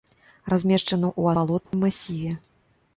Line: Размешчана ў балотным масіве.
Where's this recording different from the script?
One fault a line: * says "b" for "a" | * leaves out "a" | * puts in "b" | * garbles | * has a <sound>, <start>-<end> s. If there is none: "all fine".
* has a dropout, 1.7-1.7 s